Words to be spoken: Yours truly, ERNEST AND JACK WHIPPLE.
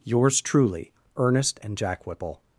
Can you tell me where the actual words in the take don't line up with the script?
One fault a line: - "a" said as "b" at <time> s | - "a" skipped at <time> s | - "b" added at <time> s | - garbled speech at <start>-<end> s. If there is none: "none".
none